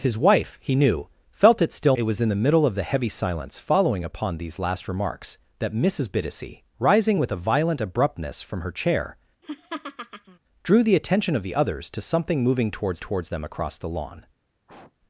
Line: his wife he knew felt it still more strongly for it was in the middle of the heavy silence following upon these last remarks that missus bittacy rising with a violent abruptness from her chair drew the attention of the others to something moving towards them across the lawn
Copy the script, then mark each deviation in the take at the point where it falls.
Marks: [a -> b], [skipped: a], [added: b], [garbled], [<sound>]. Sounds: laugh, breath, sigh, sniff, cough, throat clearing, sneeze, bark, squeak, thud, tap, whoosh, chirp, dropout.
his wife he knew felt it still [skipped: more strongly for] it was in the middle of the heavy silence following upon these last remarks that missus bittacy rising with a violent abruptness from her chair [laugh] drew the attention of the others to something moving towards [added: towards] them across the lawn [sniff]